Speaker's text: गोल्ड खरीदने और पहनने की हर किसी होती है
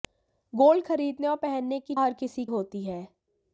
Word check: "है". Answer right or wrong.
right